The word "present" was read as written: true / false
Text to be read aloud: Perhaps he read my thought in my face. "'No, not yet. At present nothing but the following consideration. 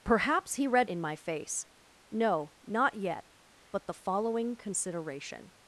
false